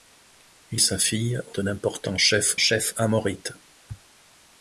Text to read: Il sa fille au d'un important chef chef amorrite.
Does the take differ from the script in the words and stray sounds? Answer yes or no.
no